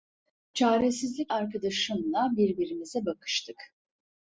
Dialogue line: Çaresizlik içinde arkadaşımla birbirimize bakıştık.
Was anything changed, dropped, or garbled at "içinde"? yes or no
yes